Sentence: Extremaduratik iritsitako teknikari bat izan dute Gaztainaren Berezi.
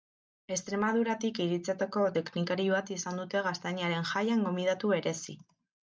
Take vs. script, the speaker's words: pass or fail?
fail